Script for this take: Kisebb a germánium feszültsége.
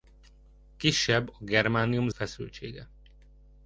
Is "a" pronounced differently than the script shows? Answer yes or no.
no